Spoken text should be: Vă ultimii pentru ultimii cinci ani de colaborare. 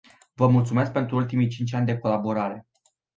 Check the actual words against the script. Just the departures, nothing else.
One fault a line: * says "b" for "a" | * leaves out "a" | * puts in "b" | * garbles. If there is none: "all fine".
* says "mulțumesc" for "ultimii"